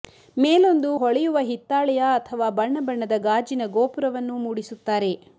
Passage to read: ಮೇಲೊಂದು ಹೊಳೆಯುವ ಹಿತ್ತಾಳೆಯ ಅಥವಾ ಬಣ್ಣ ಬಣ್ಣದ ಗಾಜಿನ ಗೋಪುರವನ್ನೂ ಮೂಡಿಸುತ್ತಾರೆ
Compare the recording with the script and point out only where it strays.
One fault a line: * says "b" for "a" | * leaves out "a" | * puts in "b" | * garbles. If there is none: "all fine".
all fine